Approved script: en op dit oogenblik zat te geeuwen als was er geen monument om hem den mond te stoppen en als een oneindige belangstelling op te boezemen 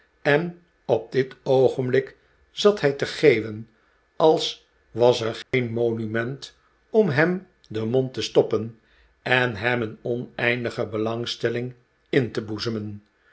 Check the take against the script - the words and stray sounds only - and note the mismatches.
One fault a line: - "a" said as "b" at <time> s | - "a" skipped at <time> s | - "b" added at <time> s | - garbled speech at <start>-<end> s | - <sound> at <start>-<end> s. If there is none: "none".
- "hij" added at 2.8 s
- dropout at 5.4-5.5 s
- "als" said as "hem" at 9.5 s
- "op" said as "in" at 12.1 s